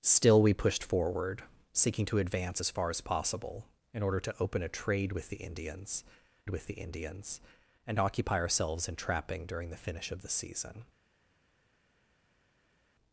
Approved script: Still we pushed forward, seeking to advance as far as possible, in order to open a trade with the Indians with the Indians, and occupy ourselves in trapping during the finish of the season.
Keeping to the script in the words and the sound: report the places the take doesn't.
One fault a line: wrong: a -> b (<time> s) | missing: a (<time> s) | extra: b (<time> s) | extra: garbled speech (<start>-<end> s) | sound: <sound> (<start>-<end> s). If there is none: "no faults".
no faults